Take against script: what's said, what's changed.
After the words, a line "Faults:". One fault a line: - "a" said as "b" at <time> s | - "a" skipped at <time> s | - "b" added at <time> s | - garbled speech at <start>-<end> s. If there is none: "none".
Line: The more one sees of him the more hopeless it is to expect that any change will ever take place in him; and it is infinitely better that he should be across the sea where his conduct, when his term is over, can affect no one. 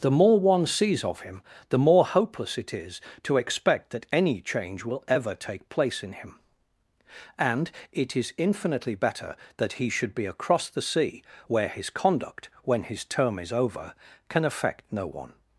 The more one sees of him the more hopeless it is to expect that any change will ever take place in him; and it is infinitely better that he should be across the sea where his conduct, when his term is over, can affect no one.
Faults:
none